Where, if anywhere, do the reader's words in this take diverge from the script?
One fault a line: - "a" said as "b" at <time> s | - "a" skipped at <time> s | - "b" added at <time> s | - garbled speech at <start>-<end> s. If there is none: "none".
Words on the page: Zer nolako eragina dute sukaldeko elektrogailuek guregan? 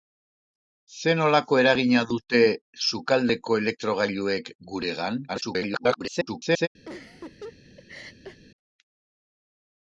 - garbled speech at 5.3-6.7 s